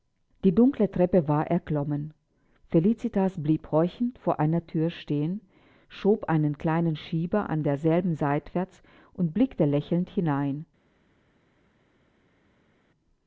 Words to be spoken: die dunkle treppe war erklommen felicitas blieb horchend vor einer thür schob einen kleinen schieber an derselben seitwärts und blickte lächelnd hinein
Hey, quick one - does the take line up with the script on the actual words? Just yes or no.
no